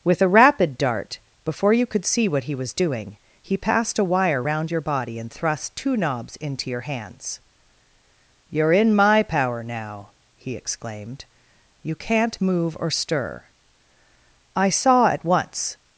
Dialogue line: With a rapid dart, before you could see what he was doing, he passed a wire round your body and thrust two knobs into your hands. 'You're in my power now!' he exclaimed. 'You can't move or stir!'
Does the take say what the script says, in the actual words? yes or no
no